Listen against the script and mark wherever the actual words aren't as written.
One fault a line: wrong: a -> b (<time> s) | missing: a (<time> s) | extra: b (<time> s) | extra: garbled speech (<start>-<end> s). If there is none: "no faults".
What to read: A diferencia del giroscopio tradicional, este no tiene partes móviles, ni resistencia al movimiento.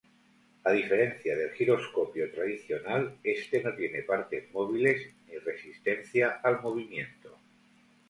no faults